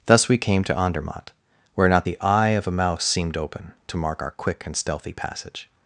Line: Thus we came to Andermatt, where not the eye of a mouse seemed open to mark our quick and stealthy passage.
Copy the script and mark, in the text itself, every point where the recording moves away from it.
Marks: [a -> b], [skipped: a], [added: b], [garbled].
Thus we came to Andermatt, where not the eye of a mouse seemed open to mark our quick and stealthy passage.